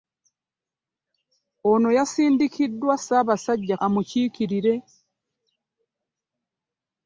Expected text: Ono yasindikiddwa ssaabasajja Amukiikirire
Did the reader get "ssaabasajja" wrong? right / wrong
right